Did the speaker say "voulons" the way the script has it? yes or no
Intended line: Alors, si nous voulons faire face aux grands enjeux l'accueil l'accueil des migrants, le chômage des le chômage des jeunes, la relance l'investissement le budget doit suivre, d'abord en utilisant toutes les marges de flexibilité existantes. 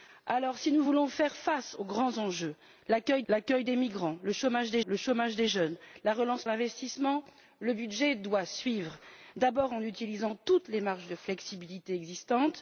yes